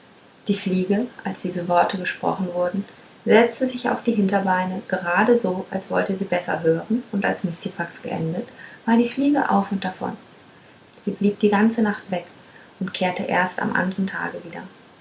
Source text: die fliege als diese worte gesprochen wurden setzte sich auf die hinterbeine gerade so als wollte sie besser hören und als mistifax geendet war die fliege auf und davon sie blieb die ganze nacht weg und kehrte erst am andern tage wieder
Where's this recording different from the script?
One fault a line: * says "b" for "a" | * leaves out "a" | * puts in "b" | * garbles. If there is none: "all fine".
all fine